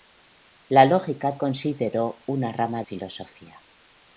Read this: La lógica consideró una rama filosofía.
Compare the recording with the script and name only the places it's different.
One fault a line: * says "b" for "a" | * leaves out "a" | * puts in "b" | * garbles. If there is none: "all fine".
all fine